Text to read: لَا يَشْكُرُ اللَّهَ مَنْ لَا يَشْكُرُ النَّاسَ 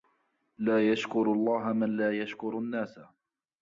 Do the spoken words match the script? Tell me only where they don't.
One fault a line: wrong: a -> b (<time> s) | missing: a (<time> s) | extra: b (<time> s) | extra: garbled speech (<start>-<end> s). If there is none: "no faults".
no faults